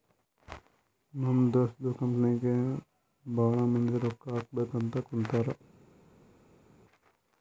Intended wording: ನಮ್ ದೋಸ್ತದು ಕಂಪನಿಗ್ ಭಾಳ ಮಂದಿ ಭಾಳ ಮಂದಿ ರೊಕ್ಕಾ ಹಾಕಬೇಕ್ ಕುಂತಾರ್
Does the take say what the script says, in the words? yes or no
no